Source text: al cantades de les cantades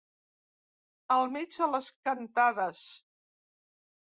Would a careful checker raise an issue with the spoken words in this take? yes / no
yes